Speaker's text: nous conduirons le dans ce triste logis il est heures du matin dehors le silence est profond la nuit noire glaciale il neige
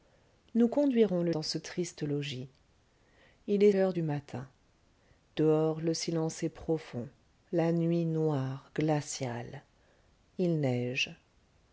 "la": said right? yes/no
yes